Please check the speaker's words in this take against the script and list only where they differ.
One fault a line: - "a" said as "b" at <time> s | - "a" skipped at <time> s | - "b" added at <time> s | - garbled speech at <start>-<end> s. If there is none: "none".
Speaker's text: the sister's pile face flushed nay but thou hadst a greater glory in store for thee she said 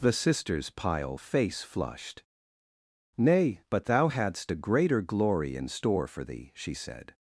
none